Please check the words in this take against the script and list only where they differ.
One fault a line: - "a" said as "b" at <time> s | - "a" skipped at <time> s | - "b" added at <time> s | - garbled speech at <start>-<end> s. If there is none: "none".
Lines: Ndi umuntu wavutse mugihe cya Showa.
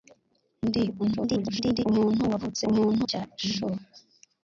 - garbled speech at 1.0-1.8 s
- "mugihe" said as "umuntu" at 2.7 s